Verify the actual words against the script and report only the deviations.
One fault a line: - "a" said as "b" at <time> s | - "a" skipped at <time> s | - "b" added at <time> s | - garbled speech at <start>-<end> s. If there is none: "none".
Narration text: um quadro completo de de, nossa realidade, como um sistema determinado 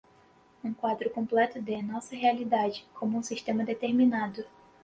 - "de" skipped at 1.8 s